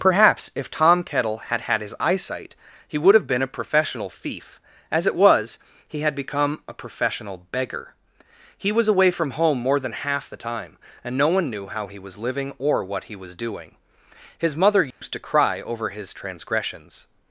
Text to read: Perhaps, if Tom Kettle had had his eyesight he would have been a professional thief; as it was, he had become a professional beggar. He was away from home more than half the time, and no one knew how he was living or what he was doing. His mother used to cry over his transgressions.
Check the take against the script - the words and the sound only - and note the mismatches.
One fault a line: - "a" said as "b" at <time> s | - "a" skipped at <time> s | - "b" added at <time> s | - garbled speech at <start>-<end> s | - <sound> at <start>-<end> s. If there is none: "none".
- dropout at 14.9-15.0 s